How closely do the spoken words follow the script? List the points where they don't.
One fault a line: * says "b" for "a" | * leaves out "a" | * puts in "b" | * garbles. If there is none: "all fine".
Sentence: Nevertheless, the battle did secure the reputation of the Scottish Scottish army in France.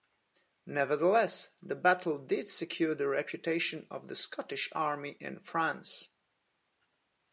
* leaves out "Scottish"